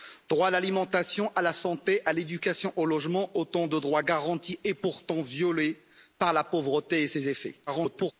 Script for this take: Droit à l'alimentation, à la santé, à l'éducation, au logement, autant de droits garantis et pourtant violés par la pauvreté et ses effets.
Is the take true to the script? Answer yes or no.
no